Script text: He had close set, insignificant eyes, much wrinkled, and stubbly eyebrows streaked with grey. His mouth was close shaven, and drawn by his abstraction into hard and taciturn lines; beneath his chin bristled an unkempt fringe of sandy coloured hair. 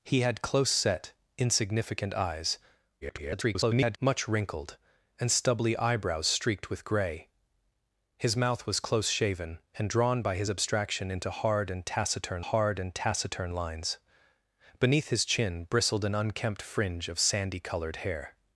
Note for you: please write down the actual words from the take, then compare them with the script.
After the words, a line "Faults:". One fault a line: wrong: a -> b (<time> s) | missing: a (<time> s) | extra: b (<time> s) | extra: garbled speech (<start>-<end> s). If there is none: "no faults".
He had close set, insignificant eyes, [garbled] much wrinkled, and stubbly eyebrows streaked with grey. His mouth was close shaven, and drawn by his abstraction into hard and taciturn hard and taciturn lines; beneath his chin bristled an unkempt fringe of sandy coloured hair.
Faults:
extra: garbled speech (3.0-4.0 s)
extra: hard and taciturn (12.4 s)